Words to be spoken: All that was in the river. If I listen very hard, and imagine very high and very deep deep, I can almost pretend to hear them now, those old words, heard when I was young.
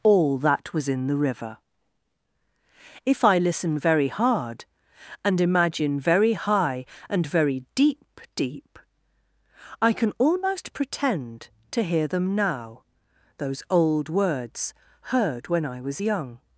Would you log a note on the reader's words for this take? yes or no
no